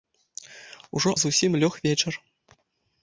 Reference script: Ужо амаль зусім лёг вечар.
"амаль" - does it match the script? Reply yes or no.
no